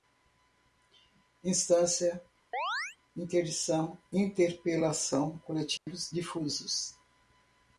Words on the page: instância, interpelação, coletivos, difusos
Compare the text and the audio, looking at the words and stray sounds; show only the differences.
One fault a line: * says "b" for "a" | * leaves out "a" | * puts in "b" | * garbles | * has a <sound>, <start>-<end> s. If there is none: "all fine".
* has a chirp, 2.5-3.0 s
* puts in "interdição"
* has a dropout, 5.8-5.9 s